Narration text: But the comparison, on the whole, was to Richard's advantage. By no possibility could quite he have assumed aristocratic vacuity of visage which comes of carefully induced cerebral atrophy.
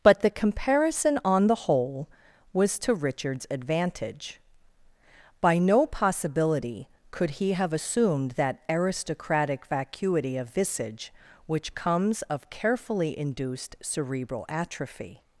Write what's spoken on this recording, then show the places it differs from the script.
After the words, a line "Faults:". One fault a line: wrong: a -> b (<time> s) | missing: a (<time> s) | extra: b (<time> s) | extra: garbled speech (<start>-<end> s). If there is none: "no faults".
But the comparison, on the whole, was to Richard's advantage. By no possibility could he have assumed that aristocratic vacuity of visage which comes of carefully induced cerebral atrophy.
Faults:
missing: quite (7.3 s)
extra: that (8.3 s)